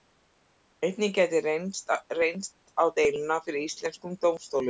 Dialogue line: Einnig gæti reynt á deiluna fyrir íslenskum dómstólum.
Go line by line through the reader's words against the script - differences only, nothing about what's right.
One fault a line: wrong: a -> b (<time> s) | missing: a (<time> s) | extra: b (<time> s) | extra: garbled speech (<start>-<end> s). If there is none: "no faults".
no faults